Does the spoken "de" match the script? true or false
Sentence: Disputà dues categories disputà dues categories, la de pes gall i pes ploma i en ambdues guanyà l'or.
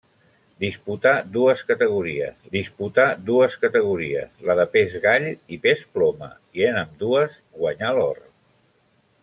true